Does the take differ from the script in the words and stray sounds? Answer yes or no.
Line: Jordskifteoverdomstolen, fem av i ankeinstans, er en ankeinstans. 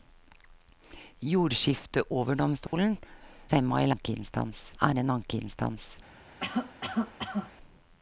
yes